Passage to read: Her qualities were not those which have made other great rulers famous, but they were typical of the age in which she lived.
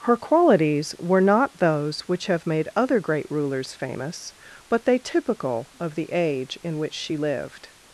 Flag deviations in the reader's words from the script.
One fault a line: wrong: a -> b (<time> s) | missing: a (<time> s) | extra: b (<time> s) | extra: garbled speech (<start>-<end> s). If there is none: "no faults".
missing: were (5.0 s)